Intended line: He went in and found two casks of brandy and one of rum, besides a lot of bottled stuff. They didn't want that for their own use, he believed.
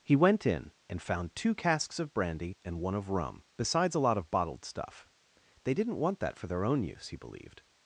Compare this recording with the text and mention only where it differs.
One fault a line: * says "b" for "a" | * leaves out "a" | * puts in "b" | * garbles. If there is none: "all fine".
all fine